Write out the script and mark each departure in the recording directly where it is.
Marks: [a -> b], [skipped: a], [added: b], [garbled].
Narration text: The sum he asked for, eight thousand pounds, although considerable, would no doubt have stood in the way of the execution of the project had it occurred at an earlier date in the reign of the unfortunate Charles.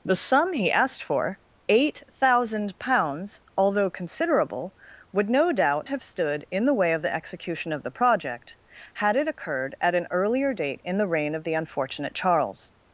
The sum he asked for, eight thousand pounds, although considerable, would no doubt have stood in the way of the execution of the project had it occurred at an earlier date in the reign of the unfortunate Charles.